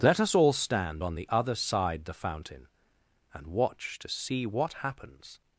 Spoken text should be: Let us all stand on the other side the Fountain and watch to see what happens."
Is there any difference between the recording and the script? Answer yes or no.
no